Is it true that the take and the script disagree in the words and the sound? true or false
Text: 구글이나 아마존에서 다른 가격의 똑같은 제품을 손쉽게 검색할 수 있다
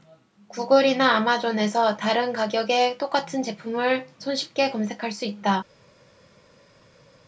false